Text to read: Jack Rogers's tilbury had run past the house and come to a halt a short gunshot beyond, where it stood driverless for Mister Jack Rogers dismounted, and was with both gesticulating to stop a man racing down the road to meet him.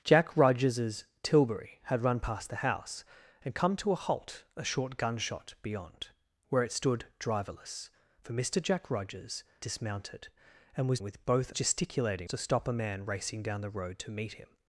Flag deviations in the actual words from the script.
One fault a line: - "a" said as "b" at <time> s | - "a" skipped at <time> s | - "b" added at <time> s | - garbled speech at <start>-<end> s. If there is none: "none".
none